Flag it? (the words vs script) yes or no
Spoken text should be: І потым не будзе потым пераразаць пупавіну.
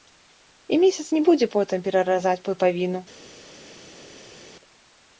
yes